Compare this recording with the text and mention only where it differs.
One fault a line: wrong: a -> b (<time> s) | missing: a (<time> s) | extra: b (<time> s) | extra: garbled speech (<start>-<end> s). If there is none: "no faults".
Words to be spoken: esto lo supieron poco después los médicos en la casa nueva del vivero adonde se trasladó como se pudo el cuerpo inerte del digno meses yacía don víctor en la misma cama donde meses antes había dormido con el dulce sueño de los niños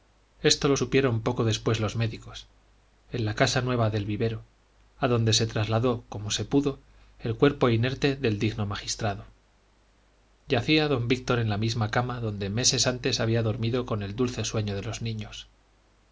wrong: meses -> magistrado (8.6 s)